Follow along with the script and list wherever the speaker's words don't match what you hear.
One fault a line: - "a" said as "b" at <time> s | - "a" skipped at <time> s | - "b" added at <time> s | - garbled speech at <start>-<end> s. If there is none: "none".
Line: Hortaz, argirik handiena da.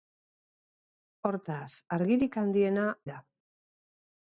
none